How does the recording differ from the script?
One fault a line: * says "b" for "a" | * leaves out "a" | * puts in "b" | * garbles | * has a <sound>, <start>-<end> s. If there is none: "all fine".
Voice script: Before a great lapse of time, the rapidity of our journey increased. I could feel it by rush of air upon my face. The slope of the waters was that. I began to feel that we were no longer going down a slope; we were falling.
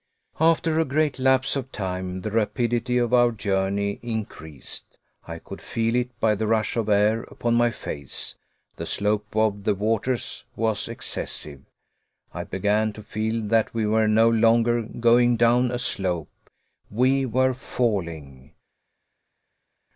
* says "After" for "Before"
* puts in "the"
* says "excessive" for "that"